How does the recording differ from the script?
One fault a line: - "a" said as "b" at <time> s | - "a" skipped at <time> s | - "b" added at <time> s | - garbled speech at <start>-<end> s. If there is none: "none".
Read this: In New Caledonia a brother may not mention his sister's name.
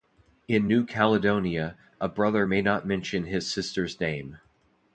none